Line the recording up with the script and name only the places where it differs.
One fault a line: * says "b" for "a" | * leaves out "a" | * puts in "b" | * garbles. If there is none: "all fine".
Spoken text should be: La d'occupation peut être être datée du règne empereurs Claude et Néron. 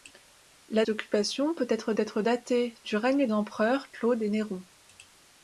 all fine